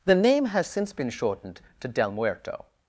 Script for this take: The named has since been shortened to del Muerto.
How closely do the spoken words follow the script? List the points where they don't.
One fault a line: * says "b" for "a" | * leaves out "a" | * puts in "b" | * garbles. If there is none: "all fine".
* says "name" for "named"